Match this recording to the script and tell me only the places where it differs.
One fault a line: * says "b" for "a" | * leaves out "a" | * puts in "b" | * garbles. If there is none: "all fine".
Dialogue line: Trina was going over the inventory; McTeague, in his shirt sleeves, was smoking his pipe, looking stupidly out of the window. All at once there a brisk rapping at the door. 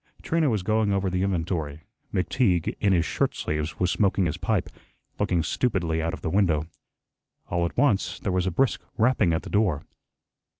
* puts in "was"